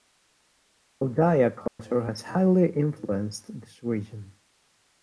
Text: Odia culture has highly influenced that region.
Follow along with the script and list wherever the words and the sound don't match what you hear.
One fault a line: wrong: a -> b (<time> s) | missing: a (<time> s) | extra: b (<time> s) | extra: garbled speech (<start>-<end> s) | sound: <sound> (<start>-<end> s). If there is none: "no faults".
sound: dropout (1.7-1.8 s)
wrong: that -> this (3.6 s)